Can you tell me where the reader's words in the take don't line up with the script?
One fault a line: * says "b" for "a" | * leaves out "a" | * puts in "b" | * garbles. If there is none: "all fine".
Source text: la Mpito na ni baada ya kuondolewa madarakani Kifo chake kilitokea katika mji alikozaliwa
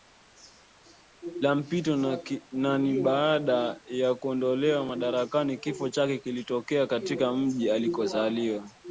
all fine